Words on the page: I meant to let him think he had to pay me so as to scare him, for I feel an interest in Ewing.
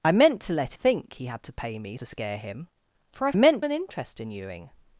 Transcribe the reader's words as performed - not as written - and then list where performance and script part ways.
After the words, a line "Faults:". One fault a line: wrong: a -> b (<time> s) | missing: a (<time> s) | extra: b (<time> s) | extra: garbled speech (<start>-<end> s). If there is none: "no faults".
I meant to let think he had to pay me to scare him, for I meant an interest in Ewing.
Faults:
missing: him (0.8 s)
missing: so as (2.0 s)
wrong: feel -> meant (3.3 s)